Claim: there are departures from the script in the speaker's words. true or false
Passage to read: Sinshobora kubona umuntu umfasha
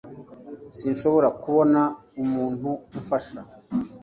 false